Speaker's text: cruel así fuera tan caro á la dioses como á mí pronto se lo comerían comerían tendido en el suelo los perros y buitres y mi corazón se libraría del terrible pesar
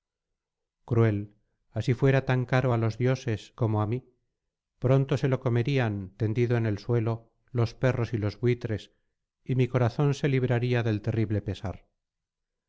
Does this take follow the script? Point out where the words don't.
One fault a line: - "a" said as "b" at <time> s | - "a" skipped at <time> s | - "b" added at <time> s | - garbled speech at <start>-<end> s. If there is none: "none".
- "la" said as "los" at 2.8 s
- "comerían" skipped at 5.9 s
- "los" added at 8.2 s